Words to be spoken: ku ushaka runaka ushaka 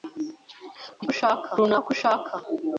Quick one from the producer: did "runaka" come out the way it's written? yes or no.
yes